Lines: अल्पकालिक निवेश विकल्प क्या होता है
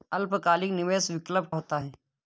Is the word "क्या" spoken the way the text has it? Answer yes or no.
no